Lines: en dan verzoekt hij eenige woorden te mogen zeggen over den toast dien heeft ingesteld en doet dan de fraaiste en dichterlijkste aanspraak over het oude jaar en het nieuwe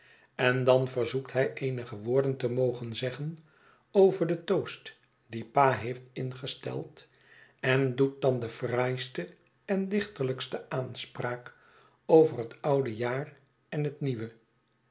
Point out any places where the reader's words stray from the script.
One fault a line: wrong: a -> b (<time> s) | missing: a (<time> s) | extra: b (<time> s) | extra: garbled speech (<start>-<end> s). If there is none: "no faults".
extra: pa (5.5 s)